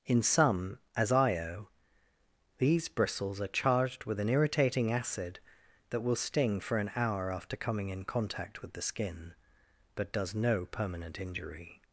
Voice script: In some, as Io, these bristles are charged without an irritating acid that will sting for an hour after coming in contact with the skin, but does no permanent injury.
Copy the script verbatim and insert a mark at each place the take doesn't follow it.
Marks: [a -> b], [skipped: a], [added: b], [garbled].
In some, as Io, these bristles are charged [without -> with] an irritating acid that will sting for an hour after coming in contact with the skin, but does no permanent injury.